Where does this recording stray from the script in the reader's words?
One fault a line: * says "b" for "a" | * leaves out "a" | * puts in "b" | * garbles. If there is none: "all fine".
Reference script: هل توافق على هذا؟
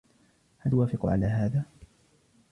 all fine